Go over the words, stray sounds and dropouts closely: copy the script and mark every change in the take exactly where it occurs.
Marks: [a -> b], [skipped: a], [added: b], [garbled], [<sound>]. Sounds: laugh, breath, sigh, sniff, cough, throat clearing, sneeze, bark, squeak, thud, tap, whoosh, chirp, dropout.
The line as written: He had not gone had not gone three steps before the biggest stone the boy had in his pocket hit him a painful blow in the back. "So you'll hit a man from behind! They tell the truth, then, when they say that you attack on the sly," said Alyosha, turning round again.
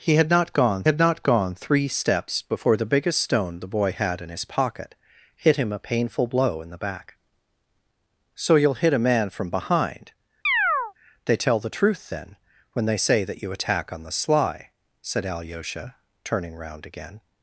He had not gone had not gone three steps before the biggest stone the boy had in his pocket hit him a painful blow in the back. "So you'll hit a man from behind! [chirp] They tell the truth, then, when they say that you attack on the sly," said Alyosha, turning round again.